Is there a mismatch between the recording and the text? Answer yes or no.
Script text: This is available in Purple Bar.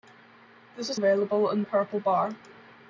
no